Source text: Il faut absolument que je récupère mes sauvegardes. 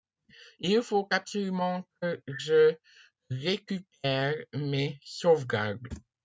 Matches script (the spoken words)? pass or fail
pass